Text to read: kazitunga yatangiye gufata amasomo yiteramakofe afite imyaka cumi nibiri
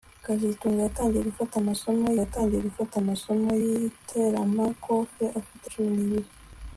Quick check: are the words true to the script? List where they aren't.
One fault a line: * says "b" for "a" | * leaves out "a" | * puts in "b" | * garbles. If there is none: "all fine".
* puts in "yatangiye gufata amasomo"
* leaves out "imyaka"